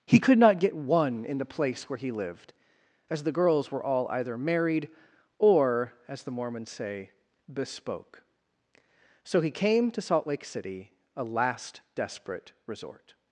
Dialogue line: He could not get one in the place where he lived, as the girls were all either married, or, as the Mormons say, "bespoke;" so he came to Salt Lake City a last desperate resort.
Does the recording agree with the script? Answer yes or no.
yes